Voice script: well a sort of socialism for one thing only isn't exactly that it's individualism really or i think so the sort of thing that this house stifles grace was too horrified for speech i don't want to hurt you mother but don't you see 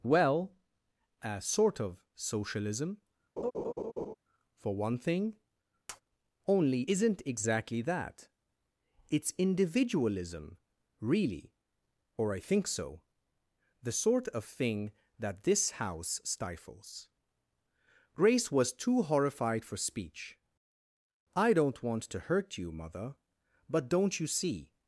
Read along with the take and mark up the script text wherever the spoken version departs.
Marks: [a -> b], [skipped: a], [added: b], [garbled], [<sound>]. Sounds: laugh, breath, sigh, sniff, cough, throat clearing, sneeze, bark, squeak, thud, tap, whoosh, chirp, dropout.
well a sort of socialism [laugh] for one thing [tap] only isn't exactly that it's individualism really or i think so the sort of thing that this house stifles grace was too horrified for speech i don't want to hurt you mother but don't you see